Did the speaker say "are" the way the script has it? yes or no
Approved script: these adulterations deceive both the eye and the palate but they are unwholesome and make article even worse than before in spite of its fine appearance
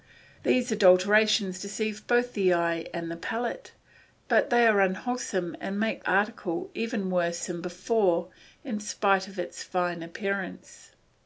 yes